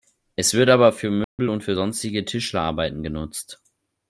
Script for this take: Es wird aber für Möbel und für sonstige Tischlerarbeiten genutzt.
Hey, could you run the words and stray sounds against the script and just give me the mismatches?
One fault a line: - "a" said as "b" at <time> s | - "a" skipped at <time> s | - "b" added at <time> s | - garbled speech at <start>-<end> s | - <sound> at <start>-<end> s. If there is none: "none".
- dropout at 1.2-1.4 s